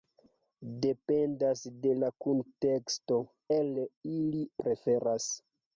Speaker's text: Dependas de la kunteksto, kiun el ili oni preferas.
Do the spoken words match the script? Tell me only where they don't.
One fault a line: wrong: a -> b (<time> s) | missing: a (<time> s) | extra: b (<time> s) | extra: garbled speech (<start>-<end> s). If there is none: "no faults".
missing: kiun (3.2 s)
missing: oni (4.4 s)